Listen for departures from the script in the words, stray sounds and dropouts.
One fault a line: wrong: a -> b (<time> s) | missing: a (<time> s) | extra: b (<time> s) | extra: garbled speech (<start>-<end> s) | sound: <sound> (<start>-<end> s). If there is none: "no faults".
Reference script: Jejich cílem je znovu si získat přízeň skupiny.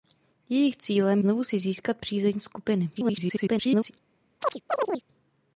missing: je (1.2 s)
extra: garbled speech (2.9-3.9 s)
sound: chirp (4.4-5.0 s)